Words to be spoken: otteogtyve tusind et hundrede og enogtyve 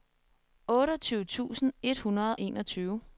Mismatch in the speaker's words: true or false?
true